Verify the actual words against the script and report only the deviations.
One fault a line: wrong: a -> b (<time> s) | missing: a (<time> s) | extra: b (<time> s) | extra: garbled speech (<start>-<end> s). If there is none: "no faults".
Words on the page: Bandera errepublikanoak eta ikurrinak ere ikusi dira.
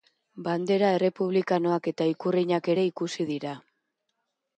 no faults